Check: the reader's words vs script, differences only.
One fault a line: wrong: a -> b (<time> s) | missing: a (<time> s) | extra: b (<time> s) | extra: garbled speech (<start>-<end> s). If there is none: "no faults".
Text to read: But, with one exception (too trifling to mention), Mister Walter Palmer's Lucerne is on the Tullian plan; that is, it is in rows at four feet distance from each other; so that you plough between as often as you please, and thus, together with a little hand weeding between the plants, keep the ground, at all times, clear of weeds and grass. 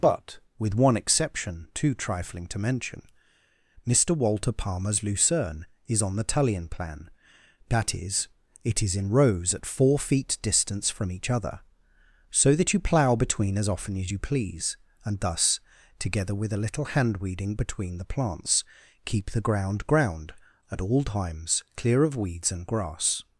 extra: ground (19.9 s)